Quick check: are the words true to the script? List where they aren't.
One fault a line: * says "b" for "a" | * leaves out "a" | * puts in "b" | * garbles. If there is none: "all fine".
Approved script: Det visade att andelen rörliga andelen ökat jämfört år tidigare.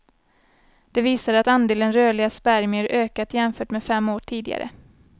* says "spermier" for "andelen"
* puts in "med fem"